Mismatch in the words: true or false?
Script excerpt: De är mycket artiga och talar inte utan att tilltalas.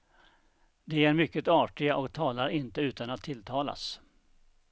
false